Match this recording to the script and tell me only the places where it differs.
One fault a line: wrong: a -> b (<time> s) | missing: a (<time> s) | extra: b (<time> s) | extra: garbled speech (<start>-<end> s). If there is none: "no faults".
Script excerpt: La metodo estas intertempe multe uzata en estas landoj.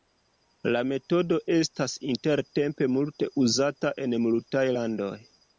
wrong: estas -> multaj (4.3 s)